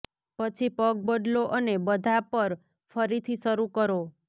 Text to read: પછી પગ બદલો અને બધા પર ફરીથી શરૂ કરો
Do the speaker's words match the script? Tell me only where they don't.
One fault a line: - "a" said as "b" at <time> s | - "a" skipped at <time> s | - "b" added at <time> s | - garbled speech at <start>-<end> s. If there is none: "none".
none